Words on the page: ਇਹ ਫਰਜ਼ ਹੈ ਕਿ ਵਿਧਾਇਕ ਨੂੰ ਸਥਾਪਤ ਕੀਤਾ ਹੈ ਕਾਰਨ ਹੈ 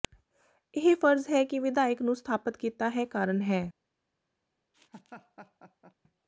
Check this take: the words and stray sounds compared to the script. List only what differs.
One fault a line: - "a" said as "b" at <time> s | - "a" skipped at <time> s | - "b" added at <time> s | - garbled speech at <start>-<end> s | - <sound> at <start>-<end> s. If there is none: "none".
- laugh at 4.7-5.9 s